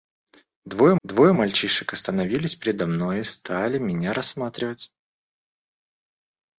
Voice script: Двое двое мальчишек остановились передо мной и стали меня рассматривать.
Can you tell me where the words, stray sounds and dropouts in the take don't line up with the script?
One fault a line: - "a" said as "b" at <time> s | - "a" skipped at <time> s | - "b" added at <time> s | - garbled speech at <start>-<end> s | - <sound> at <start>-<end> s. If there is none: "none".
none